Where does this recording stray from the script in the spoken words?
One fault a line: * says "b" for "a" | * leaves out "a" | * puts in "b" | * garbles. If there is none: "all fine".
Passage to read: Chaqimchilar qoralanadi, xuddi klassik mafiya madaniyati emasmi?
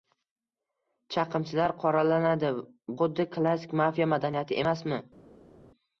all fine